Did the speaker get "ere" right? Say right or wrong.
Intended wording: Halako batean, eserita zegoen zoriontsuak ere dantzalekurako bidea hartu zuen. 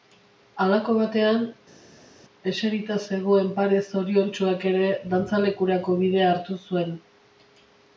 right